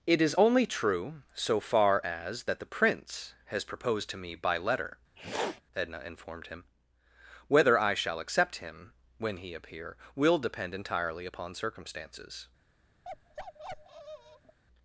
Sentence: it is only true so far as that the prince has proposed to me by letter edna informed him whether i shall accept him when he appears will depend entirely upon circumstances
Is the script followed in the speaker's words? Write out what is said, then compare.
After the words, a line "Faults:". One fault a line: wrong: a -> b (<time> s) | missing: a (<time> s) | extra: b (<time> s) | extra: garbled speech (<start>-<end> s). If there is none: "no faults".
it is only true so far as that the prince has proposed to me by letter edna informed him whether i shall accept him when he appear will depend entirely upon circumstances
Faults:
wrong: appears -> appear (9.5 s)